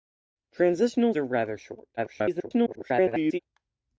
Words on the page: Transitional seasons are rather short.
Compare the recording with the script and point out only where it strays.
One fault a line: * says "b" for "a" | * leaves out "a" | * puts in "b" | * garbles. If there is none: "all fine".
* leaves out "seasons"
* garbles